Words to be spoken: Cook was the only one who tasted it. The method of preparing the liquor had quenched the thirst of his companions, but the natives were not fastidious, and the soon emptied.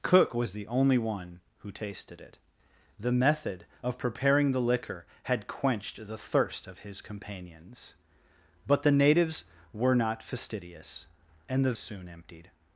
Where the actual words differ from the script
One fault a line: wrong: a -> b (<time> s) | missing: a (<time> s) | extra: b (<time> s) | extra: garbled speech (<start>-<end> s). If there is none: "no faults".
no faults